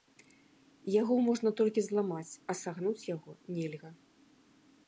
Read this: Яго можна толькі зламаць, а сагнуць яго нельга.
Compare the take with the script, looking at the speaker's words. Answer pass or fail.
pass